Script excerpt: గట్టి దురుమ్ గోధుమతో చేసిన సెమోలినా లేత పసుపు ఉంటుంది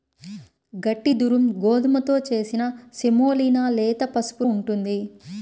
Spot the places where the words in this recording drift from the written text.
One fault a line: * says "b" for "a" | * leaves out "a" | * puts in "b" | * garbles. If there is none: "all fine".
all fine